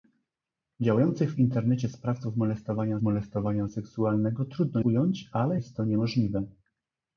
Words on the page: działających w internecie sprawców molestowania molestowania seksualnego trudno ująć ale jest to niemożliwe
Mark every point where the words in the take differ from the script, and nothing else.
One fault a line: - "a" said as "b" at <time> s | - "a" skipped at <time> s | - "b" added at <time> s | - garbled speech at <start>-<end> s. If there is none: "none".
none